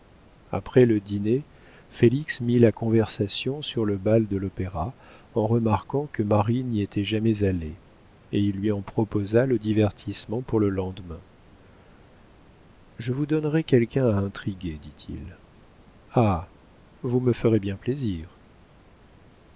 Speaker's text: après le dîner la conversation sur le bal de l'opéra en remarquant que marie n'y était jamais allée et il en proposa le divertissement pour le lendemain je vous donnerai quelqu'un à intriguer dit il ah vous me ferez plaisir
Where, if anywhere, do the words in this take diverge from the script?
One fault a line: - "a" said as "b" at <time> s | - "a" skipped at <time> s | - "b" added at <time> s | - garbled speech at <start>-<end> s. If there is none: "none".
- "félix mit" added at 1.9 s
- "lui" added at 8.6 s
- "bien" added at 17.6 s